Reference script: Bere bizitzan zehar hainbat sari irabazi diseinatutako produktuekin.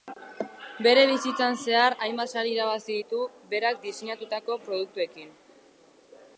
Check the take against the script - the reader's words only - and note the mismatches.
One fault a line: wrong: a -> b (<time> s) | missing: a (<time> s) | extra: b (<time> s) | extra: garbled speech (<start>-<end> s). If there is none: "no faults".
extra: ditu berak (3.0 s)